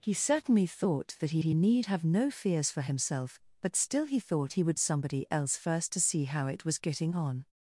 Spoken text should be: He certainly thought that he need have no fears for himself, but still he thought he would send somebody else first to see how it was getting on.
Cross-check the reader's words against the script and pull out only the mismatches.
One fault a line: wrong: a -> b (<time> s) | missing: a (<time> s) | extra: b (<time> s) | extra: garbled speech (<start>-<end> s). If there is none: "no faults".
extra: he (1.4 s)
missing: send (4.8 s)